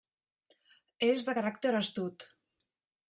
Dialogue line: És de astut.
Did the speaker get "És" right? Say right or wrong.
right